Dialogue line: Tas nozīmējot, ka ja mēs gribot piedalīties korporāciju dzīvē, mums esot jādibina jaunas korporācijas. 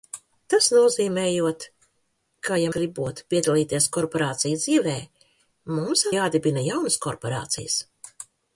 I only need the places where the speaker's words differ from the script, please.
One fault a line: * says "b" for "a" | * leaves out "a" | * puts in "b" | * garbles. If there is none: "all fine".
* leaves out "mēs"
* leaves out "esot"